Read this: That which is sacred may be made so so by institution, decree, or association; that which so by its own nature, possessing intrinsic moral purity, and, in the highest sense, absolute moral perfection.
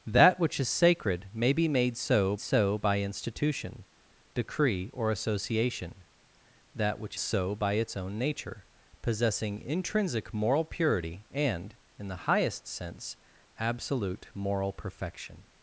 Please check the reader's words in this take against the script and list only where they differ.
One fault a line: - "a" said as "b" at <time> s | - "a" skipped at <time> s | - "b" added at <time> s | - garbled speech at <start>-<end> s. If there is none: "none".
none